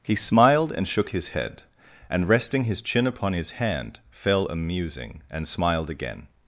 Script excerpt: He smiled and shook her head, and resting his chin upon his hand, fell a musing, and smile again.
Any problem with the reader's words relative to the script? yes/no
yes